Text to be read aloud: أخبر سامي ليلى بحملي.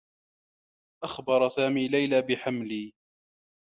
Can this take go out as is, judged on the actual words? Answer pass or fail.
pass